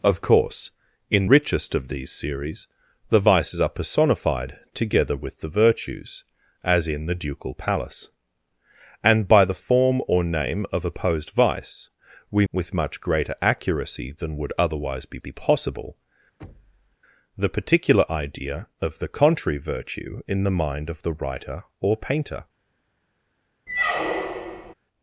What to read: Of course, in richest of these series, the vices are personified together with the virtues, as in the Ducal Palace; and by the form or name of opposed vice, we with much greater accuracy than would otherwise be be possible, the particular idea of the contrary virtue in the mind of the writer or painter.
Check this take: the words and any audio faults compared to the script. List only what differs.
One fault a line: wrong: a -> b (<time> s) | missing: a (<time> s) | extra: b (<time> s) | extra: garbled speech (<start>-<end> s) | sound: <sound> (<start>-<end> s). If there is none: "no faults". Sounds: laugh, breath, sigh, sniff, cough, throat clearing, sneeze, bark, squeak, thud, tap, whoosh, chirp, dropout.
sound: thud (16.4-17.0 s)
sound: squeak (23.7-24.7 s)